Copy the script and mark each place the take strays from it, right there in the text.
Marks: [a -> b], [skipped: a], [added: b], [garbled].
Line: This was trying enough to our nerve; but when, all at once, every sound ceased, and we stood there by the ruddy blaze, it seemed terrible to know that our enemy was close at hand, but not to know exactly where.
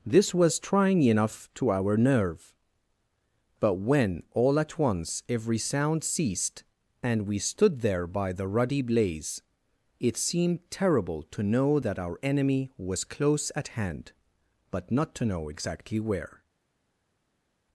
This was trying enough to our nerve; but when, all at once, every sound ceased, and we stood there by the ruddy blaze, it seemed terrible to know that our enemy was close at hand, but not to know exactly where.